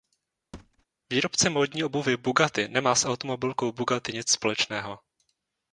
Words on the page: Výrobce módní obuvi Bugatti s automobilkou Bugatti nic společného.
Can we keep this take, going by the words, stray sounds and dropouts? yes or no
no